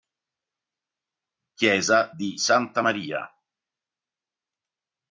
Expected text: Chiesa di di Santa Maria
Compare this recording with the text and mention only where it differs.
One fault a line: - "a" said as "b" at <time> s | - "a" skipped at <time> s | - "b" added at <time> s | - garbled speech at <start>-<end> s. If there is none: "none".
- "di" skipped at 2.4 s